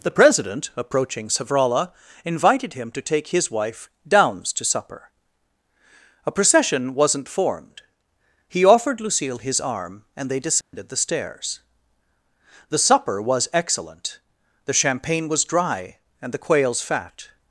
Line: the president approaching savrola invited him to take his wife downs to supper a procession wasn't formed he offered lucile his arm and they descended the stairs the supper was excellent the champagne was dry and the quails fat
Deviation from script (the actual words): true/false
false